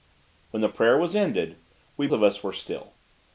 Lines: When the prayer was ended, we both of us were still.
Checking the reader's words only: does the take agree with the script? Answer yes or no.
no